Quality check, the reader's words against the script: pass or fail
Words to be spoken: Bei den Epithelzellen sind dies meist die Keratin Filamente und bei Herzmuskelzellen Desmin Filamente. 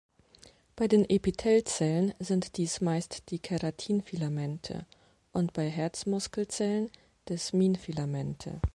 pass